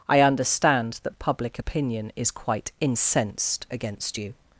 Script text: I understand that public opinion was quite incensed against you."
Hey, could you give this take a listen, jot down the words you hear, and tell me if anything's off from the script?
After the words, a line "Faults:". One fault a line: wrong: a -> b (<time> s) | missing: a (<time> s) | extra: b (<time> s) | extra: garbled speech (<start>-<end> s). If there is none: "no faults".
I understand that public opinion is quite incensed against you."
Faults:
wrong: was -> is (2.1 s)